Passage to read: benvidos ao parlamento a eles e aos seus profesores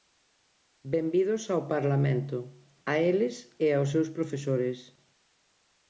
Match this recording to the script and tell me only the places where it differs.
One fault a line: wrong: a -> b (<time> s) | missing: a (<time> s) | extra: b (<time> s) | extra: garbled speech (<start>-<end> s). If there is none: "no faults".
no faults